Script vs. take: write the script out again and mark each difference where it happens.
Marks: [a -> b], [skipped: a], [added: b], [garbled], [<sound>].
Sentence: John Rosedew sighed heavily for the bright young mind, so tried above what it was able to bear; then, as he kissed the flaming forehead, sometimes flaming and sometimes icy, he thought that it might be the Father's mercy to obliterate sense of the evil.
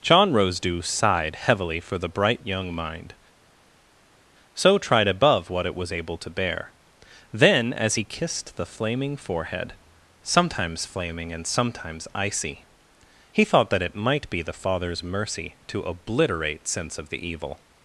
John Rosedew sighed heavily for the bright young mind, so tried above what it was able to bear; then, as he kissed the flaming forehead, sometimes flaming and sometimes icy, he thought that it might be the Father's mercy to obliterate sense of the evil.